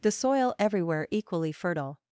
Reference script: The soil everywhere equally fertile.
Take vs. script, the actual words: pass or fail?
pass